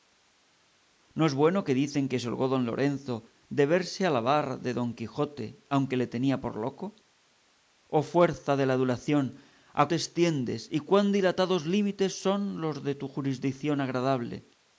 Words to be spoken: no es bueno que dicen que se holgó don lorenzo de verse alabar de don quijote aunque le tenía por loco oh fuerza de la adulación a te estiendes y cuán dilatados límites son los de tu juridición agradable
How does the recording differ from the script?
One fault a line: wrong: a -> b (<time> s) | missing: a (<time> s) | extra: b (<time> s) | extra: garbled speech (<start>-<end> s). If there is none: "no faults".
no faults